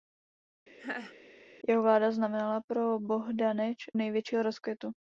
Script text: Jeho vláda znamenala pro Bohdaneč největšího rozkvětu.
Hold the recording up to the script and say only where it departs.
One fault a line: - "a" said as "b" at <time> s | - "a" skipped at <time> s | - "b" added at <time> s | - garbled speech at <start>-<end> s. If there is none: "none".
none